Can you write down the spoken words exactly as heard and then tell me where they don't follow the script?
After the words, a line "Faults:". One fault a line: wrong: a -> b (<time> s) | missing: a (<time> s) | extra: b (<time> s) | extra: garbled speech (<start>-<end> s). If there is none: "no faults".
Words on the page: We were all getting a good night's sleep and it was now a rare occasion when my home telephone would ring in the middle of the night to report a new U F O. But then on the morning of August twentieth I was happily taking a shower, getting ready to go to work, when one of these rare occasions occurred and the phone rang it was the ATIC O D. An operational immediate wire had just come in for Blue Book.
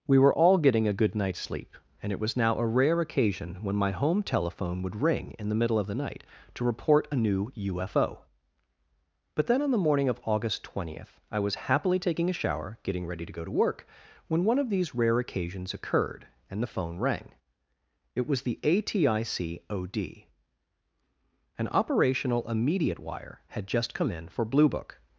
We were all getting a good night's sleep and it was now a rare occasion when my home telephone would ring in the middle of the night to report a new U F O. But then on the morning of August twentieth I was happily taking a shower, getting ready to go to work, when one of these rare occasions occurred and the phone rang it was the ATIC O D. An operational immediate wire had just come in for Blue Book.
Faults:
no faults